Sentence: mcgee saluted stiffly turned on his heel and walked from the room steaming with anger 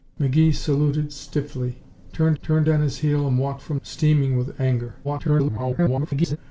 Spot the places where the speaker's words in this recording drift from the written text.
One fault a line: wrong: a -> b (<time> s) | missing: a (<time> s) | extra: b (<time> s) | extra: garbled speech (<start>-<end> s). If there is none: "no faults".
extra: turned (2.4 s)
missing: the room (3.8 s)
extra: garbled speech (5.0-6.4 s)